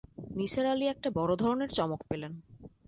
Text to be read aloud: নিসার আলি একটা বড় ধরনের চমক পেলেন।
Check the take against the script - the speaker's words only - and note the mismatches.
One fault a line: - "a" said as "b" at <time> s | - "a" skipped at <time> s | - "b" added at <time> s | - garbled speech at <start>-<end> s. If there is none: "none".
none